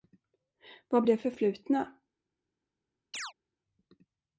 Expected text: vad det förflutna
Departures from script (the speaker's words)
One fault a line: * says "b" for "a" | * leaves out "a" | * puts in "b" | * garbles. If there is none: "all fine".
all fine